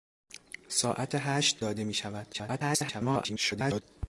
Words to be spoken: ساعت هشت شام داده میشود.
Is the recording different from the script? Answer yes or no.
yes